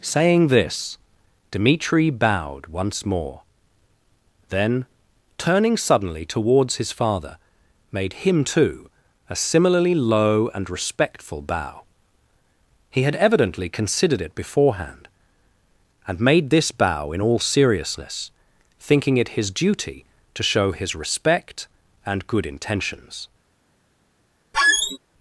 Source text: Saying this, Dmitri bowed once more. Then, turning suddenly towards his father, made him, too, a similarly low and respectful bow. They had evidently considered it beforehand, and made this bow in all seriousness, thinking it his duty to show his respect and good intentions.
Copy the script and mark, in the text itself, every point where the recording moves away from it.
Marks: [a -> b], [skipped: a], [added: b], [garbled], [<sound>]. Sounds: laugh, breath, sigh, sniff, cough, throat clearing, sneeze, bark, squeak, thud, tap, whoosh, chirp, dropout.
Saying this, Dmitri bowed once more. Then, turning suddenly towards his father, made him, too, a similarly low and respectful bow. [They -> He] had evidently considered it beforehand, and made this bow in all seriousness, thinking it his duty to show his respect and good intentions. [squeak]